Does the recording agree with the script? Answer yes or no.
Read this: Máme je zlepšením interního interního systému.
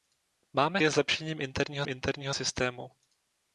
yes